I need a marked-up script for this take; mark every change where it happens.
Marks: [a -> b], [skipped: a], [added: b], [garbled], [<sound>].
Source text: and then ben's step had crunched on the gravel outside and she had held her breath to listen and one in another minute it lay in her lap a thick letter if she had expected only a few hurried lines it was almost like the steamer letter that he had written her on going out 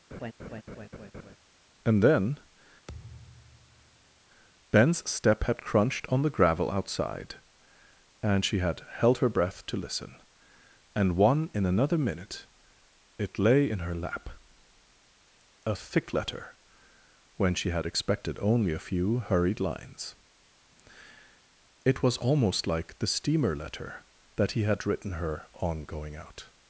[laugh] and then [thud] ben's step had crunched on the gravel outside and she had held her breath to listen and one in another minute it lay in her lap a thick letter [if -> when] she had expected only a few hurried lines it was almost like the steamer letter that he had written her on going out